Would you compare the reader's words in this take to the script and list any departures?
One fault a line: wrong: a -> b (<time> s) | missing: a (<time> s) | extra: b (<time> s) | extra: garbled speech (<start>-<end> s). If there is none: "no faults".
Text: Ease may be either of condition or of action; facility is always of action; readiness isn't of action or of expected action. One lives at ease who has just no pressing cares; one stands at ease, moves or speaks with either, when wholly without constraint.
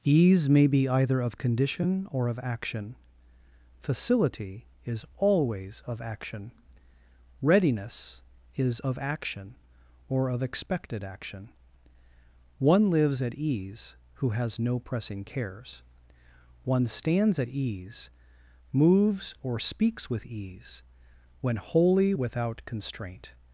wrong: isn't -> is (8.5 s)
missing: just (14.6 s)
wrong: either -> ease (20.3 s)